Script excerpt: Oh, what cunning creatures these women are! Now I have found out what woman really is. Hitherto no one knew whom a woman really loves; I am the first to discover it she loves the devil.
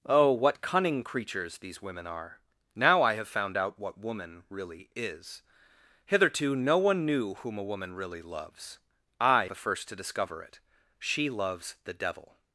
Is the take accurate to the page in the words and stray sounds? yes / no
no